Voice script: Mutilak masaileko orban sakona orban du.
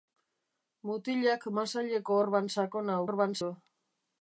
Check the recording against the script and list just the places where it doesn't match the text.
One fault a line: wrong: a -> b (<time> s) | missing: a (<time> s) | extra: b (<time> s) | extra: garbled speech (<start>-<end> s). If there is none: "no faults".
no faults